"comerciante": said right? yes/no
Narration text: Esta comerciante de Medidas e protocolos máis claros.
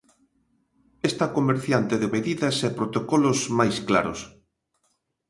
yes